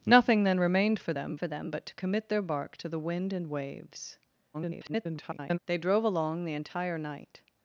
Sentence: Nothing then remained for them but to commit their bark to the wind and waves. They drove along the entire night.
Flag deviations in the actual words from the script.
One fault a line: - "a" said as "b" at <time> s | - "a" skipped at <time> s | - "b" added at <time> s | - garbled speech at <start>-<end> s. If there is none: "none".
- "for them" added at 1.3 s
- garbled speech at 4.5-5.6 s